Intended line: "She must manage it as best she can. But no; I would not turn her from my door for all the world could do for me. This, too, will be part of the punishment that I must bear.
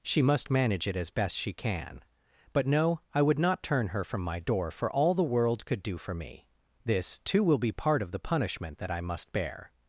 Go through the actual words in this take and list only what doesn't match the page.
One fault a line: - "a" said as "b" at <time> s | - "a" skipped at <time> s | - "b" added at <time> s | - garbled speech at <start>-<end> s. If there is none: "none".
none